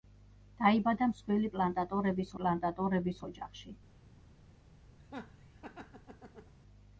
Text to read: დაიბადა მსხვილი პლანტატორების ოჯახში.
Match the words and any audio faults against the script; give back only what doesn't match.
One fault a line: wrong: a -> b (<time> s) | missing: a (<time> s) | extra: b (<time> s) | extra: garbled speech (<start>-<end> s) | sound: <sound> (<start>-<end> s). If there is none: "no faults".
extra: პლანტატორების (2.4 s)
sound: laugh (5.0-6.5 s)